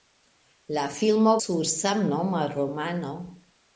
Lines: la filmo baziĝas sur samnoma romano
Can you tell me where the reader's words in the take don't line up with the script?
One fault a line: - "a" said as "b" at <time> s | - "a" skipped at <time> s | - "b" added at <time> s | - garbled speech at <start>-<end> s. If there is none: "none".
- "baziĝas" skipped at 1.3 s